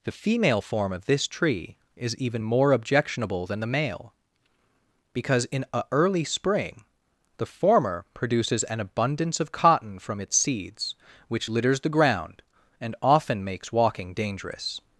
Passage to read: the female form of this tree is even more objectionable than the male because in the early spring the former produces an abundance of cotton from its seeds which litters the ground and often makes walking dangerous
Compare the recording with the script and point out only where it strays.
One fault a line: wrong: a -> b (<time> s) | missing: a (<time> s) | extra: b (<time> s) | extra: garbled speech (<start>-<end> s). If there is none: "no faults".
wrong: the -> a (5.7 s)